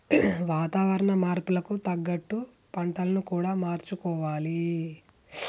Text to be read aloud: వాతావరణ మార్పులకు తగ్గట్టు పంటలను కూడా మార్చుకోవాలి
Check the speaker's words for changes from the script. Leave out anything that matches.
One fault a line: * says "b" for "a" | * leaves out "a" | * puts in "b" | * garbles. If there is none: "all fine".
all fine